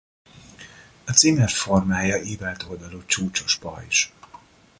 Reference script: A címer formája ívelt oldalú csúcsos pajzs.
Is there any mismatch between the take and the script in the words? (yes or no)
no